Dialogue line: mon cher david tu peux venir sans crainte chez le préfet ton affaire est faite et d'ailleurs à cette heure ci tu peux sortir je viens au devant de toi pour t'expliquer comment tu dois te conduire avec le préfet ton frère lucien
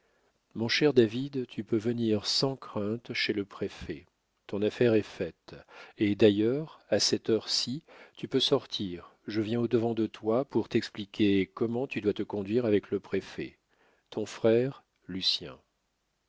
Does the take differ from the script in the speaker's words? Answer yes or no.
no